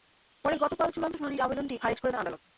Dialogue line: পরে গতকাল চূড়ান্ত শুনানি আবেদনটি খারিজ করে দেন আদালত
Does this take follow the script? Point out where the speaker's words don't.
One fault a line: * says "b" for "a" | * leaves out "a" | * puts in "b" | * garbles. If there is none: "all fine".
all fine